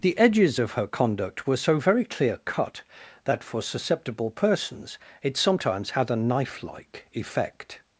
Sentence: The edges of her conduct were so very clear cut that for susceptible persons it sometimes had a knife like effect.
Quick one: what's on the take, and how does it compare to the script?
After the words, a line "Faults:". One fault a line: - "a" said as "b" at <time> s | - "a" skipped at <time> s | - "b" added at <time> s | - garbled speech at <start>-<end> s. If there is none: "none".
The edges of her conduct were so very clear cut that for susceptible persons it sometimes had a knife like effect.
Faults:
none